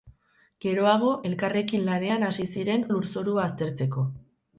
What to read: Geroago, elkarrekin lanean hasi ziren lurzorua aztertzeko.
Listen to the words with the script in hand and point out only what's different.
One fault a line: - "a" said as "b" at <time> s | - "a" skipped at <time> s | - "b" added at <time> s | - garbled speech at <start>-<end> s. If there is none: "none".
none